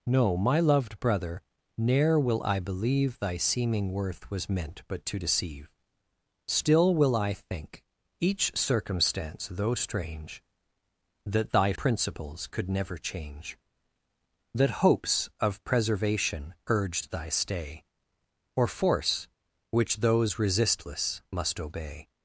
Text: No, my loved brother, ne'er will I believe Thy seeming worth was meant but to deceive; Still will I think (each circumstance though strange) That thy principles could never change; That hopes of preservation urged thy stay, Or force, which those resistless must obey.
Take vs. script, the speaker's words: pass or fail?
pass